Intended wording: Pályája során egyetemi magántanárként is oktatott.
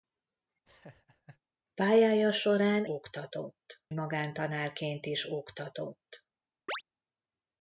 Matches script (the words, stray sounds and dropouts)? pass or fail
fail